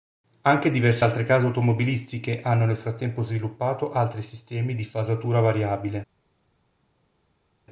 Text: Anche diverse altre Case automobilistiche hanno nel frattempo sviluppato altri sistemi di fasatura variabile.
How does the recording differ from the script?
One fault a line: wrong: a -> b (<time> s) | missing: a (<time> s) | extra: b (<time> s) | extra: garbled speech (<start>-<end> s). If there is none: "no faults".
no faults